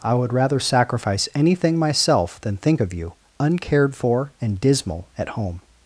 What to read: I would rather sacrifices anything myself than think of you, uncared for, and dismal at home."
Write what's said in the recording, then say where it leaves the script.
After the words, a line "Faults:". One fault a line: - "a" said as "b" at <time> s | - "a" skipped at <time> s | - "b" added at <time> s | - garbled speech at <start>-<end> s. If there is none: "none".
I would rather sacrifice anything myself than think of you, uncared for, and dismal at home."
Faults:
- "sacrifices" said as "sacrifice" at 0.6 s